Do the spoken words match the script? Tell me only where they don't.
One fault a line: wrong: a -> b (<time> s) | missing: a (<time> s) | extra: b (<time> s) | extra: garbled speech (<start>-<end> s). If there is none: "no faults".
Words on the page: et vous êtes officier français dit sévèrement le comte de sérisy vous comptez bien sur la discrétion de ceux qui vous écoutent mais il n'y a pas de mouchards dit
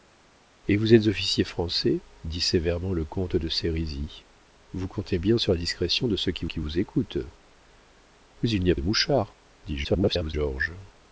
extra: qui (6.4 s)
missing: pas (8.7 s)
extra: garbled speech (9.8-10.3 s)